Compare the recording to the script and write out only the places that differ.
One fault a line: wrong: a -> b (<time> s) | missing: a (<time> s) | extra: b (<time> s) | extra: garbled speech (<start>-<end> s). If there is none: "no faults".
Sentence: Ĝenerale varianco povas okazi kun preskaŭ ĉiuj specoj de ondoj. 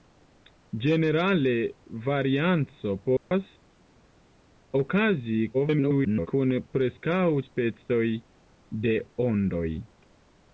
extra: garbled speech (5.5-6.3 s)
missing: ĉiuj (7.2 s)